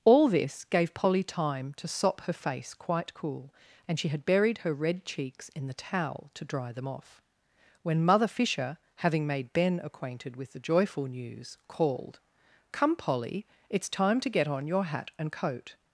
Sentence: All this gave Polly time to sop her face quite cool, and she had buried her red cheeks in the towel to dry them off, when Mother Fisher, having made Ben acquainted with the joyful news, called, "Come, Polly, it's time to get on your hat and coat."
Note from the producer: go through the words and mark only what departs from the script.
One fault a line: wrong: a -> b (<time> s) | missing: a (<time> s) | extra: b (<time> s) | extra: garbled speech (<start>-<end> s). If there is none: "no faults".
no faults